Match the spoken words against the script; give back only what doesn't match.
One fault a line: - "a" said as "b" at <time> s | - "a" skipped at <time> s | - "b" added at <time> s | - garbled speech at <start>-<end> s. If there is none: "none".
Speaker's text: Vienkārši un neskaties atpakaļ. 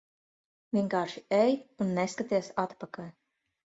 - "ej" added at 1.4 s